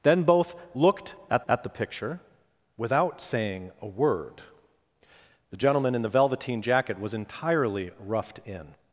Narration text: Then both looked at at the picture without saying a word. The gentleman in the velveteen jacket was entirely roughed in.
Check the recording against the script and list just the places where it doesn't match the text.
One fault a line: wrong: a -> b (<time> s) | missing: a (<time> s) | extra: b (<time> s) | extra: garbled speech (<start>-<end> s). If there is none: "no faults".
no faults